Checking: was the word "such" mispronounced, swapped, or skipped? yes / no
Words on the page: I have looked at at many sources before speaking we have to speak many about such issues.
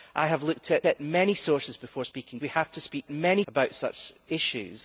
no